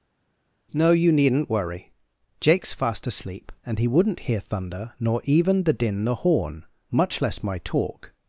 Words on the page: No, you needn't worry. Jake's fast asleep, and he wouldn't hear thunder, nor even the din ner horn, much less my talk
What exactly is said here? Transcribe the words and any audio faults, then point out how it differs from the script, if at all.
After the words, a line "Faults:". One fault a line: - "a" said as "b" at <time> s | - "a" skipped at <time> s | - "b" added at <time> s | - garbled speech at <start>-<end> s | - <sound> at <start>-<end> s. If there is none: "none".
No, you needn't worry. Jake's fast asleep, and he wouldn't hear thunder, nor even the din the horn, much less my talk
Faults:
- "ner" said as "the" at 6.0 s